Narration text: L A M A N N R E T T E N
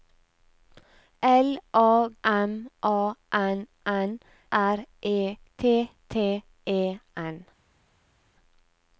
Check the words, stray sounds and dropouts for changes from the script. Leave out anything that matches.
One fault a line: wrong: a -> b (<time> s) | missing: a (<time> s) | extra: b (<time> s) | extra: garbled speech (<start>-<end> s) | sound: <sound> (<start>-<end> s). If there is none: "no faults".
no faults